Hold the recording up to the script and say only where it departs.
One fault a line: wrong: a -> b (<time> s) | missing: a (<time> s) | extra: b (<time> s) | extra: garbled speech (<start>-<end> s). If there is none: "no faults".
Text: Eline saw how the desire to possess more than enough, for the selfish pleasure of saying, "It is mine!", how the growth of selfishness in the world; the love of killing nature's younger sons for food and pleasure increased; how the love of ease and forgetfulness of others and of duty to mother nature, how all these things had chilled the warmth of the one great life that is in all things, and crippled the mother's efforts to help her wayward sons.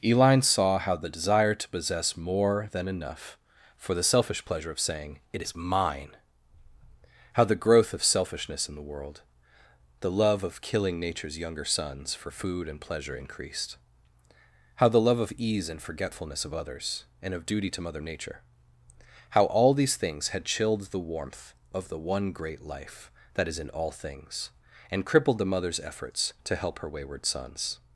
no faults